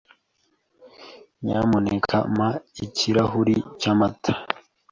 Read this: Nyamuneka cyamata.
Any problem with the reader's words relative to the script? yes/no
yes